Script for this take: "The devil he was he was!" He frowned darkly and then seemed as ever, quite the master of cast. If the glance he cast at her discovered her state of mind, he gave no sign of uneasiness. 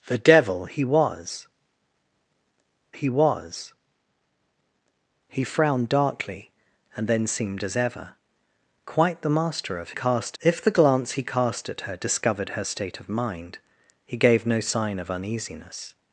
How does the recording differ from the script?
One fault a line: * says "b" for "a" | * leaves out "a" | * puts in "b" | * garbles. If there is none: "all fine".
all fine